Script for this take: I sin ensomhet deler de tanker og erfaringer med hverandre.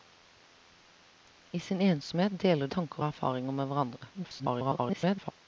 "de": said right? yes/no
no